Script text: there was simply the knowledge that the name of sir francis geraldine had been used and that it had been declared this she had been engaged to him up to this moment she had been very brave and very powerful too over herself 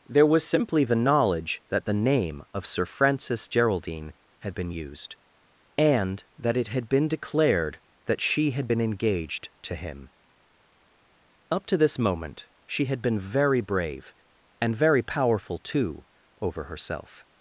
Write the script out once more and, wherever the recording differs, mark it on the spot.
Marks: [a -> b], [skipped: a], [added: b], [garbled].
there was simply the knowledge that the name of sir francis geraldine had been used and that it had been declared [this -> that] she had been engaged to him up to this moment she had been very brave and very powerful too over herself